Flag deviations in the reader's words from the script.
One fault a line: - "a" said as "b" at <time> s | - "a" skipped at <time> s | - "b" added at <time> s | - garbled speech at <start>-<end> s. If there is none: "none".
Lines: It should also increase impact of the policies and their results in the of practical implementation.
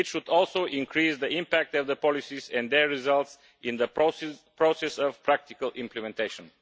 - "the" added at 1.2 s
- "process" added at 3.9 s